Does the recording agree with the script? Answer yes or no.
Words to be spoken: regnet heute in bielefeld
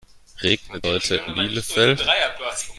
yes